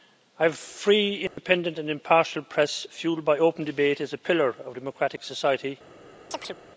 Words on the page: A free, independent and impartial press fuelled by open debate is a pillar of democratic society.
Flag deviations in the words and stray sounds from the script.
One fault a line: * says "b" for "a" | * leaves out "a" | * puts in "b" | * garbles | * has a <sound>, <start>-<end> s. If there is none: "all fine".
* has a dropout, 1.3-1.4 s
* has a chirp, 6.3-6.6 s